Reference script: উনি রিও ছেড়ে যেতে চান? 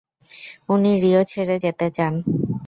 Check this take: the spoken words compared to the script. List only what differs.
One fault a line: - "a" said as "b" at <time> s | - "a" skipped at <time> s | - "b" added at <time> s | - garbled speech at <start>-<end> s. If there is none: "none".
none